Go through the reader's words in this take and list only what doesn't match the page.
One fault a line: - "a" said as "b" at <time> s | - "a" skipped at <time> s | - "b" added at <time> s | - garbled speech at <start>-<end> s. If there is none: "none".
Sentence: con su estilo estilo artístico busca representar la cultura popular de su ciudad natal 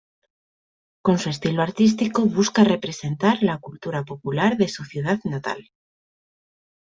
- "estilo" skipped at 1.6 s